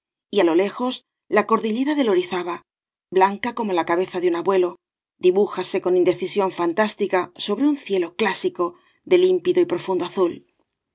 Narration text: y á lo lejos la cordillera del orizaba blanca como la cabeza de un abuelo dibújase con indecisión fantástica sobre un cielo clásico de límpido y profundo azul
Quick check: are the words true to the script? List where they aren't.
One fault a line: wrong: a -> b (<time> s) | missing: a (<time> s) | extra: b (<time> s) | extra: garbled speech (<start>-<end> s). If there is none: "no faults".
no faults